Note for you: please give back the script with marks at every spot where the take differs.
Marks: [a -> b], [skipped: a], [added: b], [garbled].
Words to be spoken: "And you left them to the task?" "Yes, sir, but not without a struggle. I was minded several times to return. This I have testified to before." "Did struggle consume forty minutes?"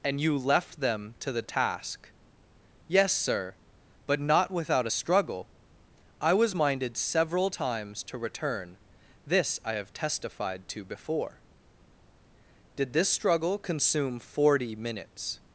"And you left them to the task?" "Yes, sir, but not without a struggle. I was minded several times to return. This I have testified to before." "Did [added: this] struggle consume forty minutes?"